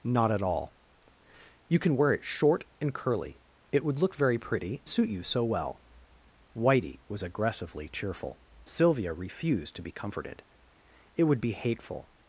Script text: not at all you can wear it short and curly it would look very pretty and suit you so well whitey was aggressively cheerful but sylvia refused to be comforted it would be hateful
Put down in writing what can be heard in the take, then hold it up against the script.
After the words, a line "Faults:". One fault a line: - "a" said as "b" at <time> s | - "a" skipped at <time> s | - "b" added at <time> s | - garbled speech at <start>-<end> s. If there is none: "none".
not at all you can wear it short and curly it would look very pretty suit you so well whitey was aggressively cheerful sylvia refused to be comforted it would be hateful
Faults:
- "and" skipped at 4.8 s
- "but" skipped at 8.4 s